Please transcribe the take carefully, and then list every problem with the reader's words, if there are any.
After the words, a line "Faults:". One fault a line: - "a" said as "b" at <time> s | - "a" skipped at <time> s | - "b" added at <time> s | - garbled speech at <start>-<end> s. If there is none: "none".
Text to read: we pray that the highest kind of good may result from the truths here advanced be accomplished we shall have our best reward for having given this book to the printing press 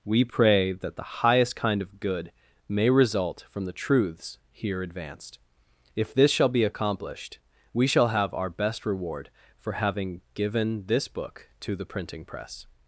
we pray that the highest kind of good may result from the truths here advanced if this shall be accomplished we shall have our best reward for having given this book to the printing press
Faults:
- "if this shall" added at 6.0 s